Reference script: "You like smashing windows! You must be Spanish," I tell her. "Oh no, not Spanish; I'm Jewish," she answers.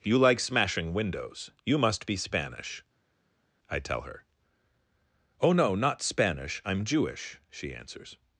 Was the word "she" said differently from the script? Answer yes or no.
no